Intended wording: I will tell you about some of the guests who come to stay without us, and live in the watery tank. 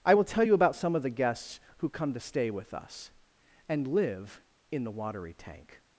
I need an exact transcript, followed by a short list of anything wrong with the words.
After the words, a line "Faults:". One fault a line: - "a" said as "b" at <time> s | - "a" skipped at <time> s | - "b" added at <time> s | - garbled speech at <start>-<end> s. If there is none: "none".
I will tell you about some of the guests who come to stay with us, and live in the watery tank.
Faults:
- "without" said as "with" at 2.5 s